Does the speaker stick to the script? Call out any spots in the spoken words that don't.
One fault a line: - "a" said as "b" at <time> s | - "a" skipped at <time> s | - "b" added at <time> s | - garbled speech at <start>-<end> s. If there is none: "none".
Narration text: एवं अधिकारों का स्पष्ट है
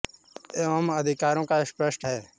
none